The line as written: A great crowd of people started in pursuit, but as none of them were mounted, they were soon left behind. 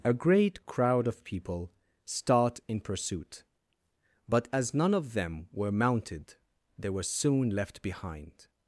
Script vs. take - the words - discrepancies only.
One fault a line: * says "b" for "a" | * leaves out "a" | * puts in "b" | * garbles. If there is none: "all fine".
* says "start" for "started"